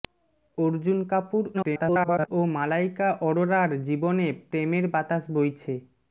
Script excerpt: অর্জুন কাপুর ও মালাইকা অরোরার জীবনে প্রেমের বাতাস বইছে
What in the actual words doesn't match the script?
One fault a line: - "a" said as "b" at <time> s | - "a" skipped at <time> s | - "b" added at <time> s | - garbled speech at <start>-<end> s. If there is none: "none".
- garbled speech at 1.5-2.3 s